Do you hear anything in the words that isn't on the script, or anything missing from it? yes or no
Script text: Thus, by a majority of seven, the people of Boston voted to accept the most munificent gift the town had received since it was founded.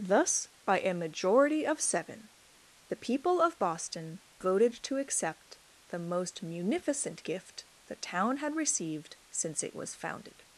no